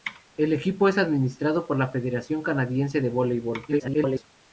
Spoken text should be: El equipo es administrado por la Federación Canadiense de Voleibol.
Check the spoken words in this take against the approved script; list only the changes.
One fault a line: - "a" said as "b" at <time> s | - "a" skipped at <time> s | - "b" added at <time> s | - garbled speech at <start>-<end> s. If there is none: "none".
- garbled speech at 3.7-4.2 s